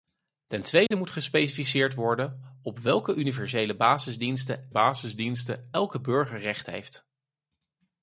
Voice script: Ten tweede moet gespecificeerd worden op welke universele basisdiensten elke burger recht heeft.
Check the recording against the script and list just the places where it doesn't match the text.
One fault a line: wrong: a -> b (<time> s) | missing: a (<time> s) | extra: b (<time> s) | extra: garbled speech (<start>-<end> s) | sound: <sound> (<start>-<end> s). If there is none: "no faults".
sound: dropout (0.9-0.9 s)
extra: basisdiensten (4.7 s)